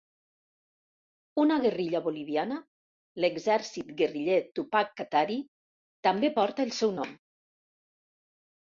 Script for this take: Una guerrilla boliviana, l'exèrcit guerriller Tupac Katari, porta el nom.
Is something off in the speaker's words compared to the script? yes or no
yes